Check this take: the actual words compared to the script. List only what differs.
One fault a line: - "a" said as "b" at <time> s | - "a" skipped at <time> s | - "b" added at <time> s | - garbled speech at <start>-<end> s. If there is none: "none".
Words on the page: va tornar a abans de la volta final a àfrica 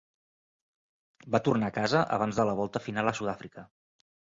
- "casa" added at 1.8 s
- "sud" added at 3.2 s